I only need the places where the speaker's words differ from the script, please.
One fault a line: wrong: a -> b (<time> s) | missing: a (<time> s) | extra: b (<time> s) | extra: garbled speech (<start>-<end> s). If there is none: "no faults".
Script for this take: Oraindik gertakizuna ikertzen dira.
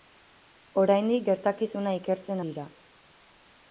no faults